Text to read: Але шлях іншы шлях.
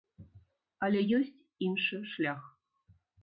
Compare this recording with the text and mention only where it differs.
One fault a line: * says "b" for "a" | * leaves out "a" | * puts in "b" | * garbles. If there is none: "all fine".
* says "ёсць" for "шлях"